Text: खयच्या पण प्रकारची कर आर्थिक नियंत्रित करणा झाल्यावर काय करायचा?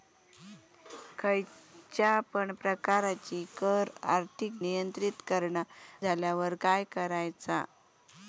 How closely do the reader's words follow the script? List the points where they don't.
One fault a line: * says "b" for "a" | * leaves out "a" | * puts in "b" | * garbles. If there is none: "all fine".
all fine